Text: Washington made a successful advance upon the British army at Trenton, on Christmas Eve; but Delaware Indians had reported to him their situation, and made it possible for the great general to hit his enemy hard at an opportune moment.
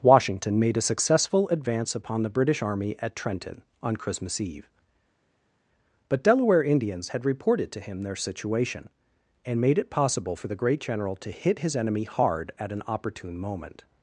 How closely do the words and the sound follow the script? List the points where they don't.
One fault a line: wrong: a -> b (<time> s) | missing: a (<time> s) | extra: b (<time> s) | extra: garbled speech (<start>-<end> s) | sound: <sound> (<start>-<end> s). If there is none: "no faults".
no faults